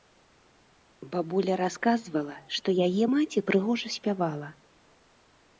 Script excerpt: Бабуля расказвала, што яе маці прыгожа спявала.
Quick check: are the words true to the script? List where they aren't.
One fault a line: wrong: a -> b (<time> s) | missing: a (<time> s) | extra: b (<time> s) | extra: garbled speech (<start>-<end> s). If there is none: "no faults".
no faults